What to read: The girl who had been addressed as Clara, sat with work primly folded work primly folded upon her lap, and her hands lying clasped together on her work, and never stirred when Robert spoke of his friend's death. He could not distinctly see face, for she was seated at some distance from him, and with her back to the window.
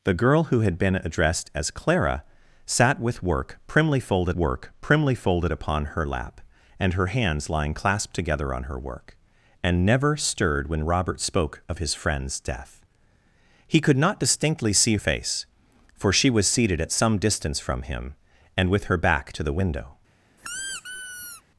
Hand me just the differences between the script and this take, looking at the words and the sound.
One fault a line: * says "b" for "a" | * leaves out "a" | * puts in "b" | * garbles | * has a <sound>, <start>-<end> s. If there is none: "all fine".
* has a squeak, 20.4-21.4 s